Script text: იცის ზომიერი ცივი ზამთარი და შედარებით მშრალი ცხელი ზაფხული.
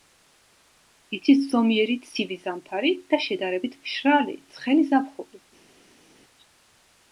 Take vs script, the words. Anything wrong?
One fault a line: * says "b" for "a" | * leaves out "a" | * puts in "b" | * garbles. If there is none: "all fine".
all fine